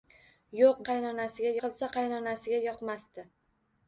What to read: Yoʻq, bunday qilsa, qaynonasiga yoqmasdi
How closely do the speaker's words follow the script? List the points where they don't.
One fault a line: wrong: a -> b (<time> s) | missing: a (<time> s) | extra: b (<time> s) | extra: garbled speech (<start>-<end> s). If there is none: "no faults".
wrong: bunday -> qaynonasiga (0.9 s)